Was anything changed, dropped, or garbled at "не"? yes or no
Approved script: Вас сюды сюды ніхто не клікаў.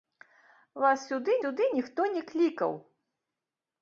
no